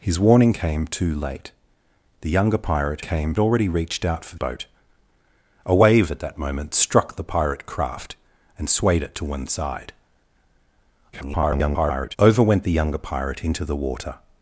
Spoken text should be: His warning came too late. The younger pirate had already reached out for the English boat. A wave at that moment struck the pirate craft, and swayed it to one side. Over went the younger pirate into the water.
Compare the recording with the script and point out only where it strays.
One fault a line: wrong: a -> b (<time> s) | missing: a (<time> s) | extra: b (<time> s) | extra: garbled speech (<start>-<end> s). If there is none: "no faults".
wrong: had -> came (3.0 s)
missing: the English (4.4 s)
extra: garbled speech (11.1-12.2 s)